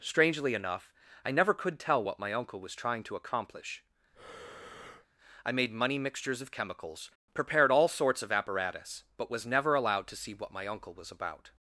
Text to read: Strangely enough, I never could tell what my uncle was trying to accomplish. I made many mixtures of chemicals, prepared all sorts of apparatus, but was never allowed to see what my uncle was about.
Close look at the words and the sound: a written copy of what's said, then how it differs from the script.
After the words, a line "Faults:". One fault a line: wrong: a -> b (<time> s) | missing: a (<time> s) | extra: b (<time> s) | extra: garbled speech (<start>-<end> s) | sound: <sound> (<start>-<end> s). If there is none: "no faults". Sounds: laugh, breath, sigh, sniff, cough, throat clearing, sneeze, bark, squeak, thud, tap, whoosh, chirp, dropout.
Strangely enough, I never could tell what my uncle was trying to accomplish. I made money mixtures of chemicals, prepared all sorts of apparatus, but was never allowed to see what my uncle was about.
Faults:
sound: breath (4.1-5.1 s)
wrong: many -> money (5.7 s)